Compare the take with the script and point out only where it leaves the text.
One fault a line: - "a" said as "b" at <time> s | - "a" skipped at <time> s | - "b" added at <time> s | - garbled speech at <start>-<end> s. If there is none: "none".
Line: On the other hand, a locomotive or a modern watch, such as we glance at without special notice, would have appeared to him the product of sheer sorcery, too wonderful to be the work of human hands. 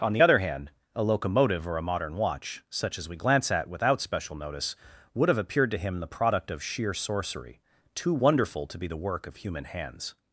none